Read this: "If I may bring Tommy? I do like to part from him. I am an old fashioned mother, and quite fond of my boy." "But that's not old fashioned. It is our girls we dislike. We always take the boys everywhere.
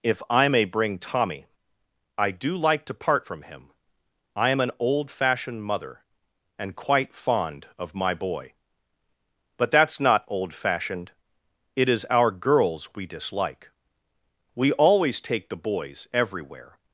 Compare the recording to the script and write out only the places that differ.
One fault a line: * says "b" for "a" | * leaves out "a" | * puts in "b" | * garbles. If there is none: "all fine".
all fine